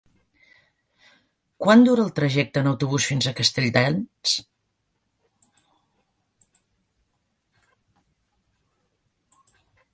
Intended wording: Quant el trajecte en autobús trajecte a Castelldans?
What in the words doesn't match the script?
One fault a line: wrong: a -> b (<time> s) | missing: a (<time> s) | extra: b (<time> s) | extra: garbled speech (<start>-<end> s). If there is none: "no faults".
extra: dura (1.9 s)
wrong: trajecte -> fins (3.1 s)